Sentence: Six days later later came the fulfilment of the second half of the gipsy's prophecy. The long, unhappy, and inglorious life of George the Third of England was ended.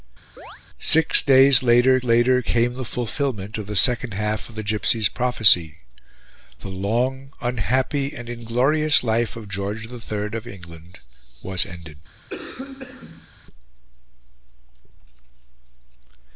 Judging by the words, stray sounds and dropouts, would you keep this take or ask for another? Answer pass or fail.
fail